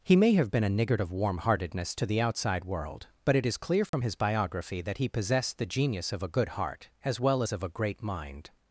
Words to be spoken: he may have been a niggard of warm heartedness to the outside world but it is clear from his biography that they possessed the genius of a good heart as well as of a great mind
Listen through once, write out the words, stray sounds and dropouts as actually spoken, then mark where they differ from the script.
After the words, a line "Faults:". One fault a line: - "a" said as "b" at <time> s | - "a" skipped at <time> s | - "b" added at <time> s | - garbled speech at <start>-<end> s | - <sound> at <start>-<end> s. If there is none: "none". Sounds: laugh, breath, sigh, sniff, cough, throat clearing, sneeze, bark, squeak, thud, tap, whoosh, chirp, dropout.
he may have been a niggard of warm heartedness to the outside world but it is clear from his biography that he possessed the genius of a good heart as well as of a great mind
Faults:
- dropout at 3.9-3.9 s
- "they" said as "he" at 5.0 s